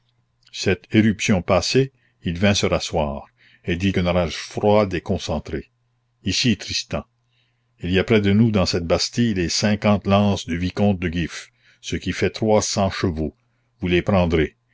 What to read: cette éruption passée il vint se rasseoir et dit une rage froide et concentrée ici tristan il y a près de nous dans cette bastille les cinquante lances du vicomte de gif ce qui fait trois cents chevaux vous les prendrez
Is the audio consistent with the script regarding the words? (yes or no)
yes